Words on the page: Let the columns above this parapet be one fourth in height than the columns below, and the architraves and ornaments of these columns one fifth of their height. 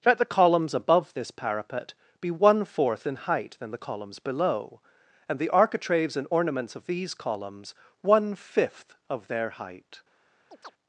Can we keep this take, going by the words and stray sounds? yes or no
no